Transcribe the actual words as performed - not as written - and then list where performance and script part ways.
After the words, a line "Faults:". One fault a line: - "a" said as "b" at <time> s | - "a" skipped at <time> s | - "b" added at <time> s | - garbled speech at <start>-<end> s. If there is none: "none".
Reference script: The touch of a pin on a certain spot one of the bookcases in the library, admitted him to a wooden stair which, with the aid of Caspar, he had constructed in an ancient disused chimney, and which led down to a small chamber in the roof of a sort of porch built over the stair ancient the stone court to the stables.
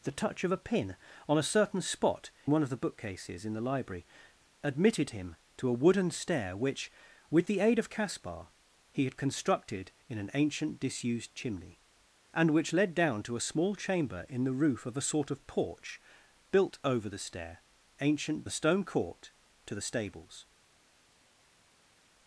The touch of a pin on a certain spot one of the bookcases in the library, admitted him to a wooden stair which, with the aid of Caspar, he had constructed in an ancient disused chimney, and which led down to a small chamber in the roof of a sort of porch built over the stair ancient the stone court to the stables.
Faults:
none